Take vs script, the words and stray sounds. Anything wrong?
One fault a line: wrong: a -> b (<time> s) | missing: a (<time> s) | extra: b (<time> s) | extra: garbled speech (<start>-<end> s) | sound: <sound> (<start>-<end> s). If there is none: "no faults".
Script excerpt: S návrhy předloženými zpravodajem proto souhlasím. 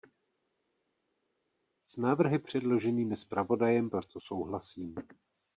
no faults